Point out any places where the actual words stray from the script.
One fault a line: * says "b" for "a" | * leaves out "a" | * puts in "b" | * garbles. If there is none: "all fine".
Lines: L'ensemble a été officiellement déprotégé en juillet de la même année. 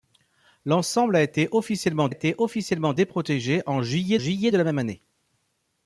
* puts in "été officiellement"
* puts in "juillet"